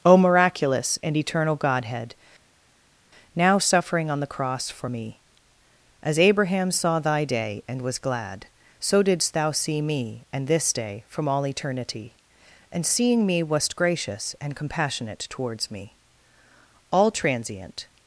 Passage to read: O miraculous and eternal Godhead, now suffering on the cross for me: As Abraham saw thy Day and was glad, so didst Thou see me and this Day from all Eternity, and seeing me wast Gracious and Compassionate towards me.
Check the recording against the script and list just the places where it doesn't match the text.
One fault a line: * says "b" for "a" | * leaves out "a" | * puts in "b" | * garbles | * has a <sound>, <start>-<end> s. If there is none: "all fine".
* puts in "All transient"